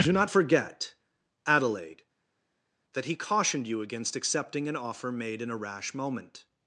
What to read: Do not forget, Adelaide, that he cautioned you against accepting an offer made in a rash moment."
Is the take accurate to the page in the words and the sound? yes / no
yes